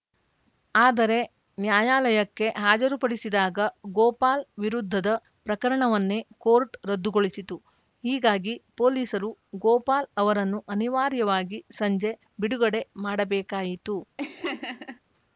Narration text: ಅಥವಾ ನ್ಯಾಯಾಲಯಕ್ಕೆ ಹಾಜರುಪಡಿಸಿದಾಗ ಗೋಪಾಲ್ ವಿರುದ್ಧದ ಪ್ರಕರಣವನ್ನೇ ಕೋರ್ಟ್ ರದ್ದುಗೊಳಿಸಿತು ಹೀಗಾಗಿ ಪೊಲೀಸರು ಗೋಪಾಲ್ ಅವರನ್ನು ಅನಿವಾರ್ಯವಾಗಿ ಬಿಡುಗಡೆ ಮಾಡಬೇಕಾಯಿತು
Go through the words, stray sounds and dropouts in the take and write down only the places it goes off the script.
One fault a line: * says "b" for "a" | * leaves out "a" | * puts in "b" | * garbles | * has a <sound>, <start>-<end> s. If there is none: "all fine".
* says "ಆದರೆ" for "ಅಥವಾ"
* puts in "ಸಂಜೆ"
* has a laugh, 14.2-15.0 s